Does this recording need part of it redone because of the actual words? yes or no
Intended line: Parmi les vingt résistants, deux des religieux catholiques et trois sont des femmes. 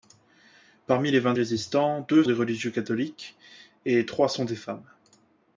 no